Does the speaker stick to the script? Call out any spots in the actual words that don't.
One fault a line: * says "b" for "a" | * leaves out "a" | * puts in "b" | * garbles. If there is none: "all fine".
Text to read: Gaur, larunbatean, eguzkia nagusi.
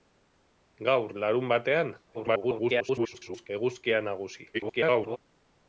* garbles
* garbles